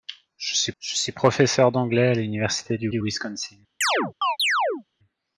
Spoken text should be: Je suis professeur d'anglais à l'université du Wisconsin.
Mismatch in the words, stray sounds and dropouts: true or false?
true